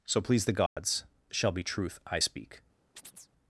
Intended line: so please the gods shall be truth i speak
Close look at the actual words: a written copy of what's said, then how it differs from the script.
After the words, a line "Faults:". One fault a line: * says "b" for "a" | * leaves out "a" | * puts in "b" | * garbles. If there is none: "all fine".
so please the gods shall be truth i speak
Faults:
all fine